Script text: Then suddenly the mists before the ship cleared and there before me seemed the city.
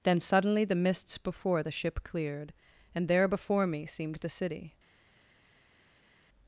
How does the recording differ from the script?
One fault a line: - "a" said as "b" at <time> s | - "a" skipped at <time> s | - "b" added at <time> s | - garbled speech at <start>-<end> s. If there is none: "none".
none